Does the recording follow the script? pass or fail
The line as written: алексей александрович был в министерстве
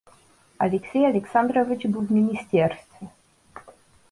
pass